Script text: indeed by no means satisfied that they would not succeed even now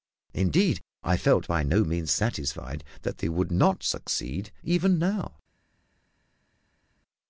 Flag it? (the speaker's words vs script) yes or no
yes